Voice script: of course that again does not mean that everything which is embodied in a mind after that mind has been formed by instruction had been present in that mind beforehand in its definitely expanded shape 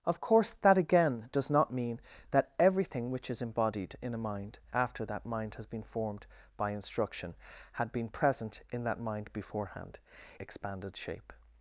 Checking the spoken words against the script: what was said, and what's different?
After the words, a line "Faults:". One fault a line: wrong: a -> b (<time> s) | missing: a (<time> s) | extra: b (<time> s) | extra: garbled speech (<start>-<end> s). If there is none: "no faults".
of course that again does not mean that everything which is embodied in a mind after that mind has been formed by instruction had been present in that mind beforehand expanded shape
Faults:
missing: in its definitely (10.0 s)